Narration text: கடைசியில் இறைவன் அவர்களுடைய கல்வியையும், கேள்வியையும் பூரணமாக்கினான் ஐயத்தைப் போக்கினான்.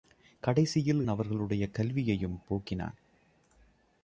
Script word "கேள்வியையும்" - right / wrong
wrong